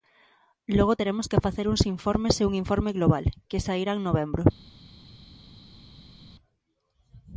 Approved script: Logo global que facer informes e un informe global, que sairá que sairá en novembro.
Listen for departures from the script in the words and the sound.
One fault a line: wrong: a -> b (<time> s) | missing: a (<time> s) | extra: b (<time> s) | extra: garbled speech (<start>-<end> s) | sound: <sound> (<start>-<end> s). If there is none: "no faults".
wrong: global -> teremos (1.0 s)
extra: uns (1.7 s)
missing: que sairá (3.9 s)